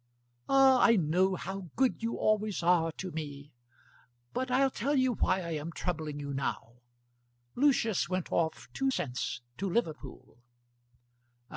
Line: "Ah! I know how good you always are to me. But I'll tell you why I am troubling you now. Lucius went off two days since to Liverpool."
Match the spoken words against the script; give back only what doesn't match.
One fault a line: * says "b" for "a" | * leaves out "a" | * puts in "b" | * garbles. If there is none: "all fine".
* leaves out "days"